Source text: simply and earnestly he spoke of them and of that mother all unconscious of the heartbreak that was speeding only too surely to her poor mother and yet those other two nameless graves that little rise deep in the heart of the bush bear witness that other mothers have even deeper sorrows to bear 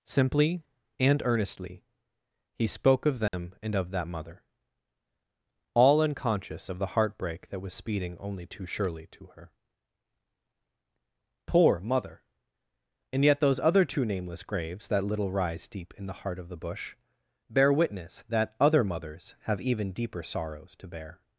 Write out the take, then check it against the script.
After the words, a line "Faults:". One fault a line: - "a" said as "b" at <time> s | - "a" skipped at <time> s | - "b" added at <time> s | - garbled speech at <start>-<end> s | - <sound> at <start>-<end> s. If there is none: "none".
simply and earnestly he spoke of them and of that mother all unconscious of the heartbreak that was speeding only too surely to her poor mother and yet those other two nameless graves that little rise deep in the heart of the bush bear witness that other mothers have even deeper sorrows to bear
Faults:
- dropout at 3.3-3.3 s